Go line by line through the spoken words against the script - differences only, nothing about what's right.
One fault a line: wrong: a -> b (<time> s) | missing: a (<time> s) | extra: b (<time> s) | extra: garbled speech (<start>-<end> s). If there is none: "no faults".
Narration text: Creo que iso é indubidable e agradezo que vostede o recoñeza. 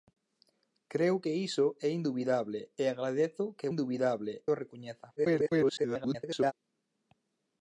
wrong: vostede -> indubidable (3.7 s)
extra: garbled speech (5.2-6.5 s)